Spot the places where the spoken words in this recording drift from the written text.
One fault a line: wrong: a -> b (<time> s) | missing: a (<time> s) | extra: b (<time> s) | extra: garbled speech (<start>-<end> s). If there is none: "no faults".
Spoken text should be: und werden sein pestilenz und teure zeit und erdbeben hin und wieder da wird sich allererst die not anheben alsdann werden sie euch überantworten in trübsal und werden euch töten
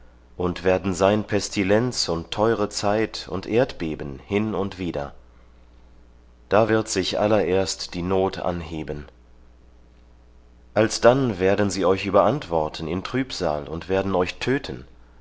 no faults